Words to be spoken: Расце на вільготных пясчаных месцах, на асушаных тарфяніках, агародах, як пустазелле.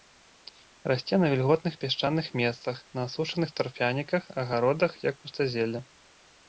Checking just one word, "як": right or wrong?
right